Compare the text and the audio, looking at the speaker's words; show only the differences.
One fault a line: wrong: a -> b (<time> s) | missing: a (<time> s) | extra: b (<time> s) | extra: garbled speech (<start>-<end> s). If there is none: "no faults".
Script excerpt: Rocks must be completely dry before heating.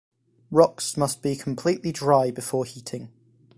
no faults